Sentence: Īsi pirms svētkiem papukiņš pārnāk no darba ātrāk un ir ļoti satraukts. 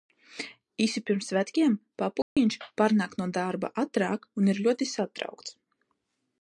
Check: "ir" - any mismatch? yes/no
no